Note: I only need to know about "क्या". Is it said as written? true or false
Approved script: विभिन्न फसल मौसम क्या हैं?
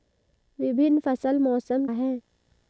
false